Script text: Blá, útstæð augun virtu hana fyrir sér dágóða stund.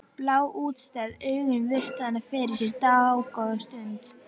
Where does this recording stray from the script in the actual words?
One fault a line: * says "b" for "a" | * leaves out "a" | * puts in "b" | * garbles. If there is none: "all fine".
all fine